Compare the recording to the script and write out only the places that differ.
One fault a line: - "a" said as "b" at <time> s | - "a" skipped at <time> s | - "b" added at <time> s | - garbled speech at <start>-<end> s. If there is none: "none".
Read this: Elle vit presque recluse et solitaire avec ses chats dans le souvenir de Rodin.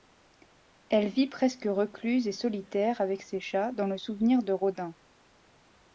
none